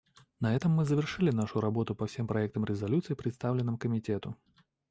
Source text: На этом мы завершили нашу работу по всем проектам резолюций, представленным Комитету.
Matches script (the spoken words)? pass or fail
pass